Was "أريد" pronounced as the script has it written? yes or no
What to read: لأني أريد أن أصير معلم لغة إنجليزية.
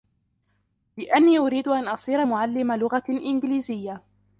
yes